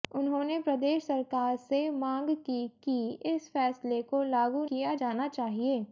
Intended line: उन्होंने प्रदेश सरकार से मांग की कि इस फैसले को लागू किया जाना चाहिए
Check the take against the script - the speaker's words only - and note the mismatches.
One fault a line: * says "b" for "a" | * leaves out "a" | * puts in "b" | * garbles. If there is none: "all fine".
all fine